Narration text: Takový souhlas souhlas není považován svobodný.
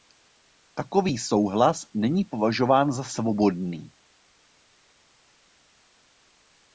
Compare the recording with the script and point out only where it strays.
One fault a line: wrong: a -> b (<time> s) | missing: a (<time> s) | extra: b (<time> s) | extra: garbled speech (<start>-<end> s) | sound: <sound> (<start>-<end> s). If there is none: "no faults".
missing: souhlas (1.9 s)
extra: za (2.9 s)